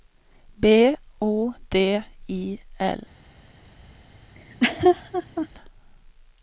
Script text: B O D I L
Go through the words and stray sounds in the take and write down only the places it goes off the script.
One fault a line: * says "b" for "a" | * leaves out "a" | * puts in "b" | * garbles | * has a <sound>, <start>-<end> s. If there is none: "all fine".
* has a laugh, 4.3-5.5 s